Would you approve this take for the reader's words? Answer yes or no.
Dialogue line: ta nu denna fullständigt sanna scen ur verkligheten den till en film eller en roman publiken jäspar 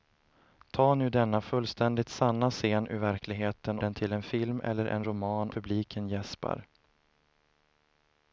yes